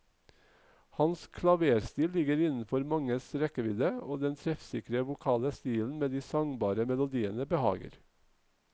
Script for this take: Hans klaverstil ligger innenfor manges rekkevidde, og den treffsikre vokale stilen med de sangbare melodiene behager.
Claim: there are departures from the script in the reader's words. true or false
false